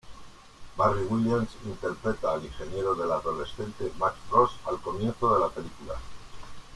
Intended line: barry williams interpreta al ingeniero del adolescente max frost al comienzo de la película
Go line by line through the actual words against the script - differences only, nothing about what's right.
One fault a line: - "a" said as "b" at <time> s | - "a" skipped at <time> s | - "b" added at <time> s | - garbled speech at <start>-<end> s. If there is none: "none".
none